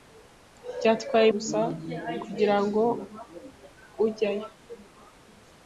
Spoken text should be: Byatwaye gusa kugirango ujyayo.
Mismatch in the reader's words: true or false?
false